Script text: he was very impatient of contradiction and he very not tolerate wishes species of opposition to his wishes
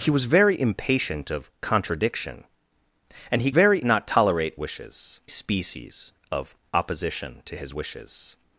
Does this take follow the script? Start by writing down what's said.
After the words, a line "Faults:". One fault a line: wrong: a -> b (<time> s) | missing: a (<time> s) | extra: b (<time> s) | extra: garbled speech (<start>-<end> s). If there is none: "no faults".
he was very impatient of contradiction and he very not tolerate wishes species of opposition to his wishes
Faults:
no faults